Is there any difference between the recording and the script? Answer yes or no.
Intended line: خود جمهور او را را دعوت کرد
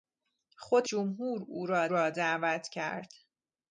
no